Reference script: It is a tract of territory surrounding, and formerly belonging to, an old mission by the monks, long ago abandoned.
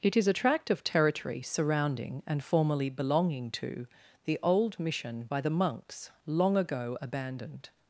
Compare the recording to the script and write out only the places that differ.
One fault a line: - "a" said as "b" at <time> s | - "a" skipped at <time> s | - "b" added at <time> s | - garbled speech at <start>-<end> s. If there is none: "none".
- "an" said as "the" at 4.2 s